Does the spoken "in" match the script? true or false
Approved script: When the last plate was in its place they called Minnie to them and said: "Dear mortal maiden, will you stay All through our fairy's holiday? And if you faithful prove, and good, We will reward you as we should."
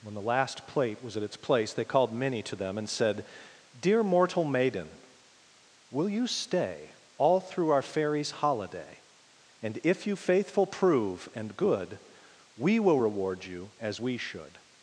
false